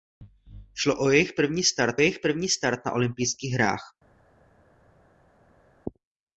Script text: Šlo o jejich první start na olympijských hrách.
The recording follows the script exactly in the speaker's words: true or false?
false